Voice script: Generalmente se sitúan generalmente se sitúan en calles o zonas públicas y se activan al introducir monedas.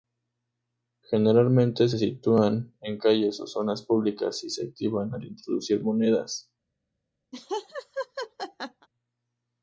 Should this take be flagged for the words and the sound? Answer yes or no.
yes